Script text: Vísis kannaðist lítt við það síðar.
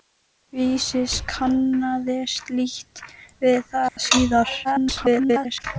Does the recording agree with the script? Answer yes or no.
no